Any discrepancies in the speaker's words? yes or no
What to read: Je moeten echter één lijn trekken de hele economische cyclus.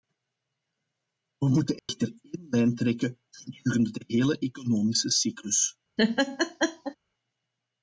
yes